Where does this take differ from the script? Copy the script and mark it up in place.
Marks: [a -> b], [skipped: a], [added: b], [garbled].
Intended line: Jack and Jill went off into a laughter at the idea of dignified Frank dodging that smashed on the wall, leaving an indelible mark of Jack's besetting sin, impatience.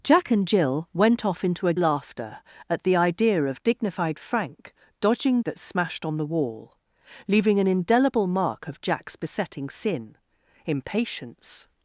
Jack and Jill went off into a laughter at the idea of dignified Frank dodging that smashed on the wall, leaving an indelible mark of Jack's besetting sin, impatience.